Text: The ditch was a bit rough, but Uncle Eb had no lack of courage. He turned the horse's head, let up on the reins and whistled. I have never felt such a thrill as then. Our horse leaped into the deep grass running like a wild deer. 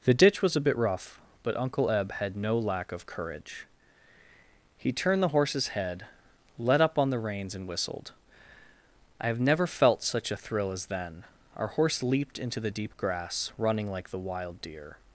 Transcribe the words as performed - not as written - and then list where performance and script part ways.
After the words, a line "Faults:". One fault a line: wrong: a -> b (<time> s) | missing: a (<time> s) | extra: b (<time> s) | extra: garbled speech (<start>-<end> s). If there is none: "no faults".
The ditch was a bit rough, but Uncle Eb had no lack of courage. He turned the horse's head, let up on the reins and whistled. I have never felt such a thrill as then. Our horse leaped into the deep grass running like the wild deer.
Faults:
wrong: a -> the (14.1 s)